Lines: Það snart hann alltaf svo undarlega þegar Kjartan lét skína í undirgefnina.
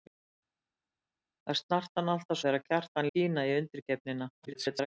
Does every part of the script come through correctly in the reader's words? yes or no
no